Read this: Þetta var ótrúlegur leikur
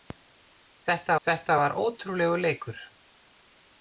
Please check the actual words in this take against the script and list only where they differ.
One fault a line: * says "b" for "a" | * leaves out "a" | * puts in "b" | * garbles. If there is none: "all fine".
* puts in "þetta"